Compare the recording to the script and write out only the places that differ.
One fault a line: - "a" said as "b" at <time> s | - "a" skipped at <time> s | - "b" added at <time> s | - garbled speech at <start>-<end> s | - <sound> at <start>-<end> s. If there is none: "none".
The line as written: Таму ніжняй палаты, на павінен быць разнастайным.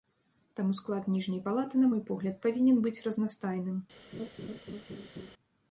- "склад" added at 0.8 s
- "мой погляд" added at 1.9 s
- laugh at 4.1-5.3 s